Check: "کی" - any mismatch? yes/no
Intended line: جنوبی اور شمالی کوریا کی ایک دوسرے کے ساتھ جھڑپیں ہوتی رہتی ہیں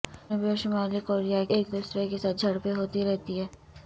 yes